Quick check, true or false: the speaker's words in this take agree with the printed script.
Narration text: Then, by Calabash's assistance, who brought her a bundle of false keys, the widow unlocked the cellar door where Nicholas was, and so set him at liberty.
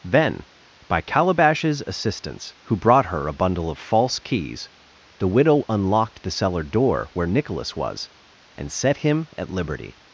false